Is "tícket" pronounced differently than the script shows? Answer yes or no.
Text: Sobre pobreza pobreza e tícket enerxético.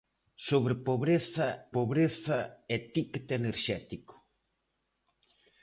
no